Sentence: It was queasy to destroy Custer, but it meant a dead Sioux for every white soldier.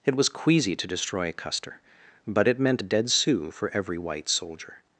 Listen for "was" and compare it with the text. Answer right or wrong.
right